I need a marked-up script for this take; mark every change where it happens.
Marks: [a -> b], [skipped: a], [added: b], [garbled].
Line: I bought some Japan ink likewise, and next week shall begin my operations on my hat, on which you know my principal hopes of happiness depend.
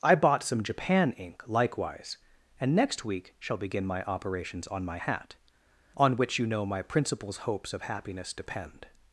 I bought some Japan ink likewise, and next week shall begin my operations on my hat, on which you know my [principal -> principals] hopes of happiness depend.